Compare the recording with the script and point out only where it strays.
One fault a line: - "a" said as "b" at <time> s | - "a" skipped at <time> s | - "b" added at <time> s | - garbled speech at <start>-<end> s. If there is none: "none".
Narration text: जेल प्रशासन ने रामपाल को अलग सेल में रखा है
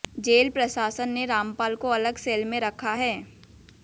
none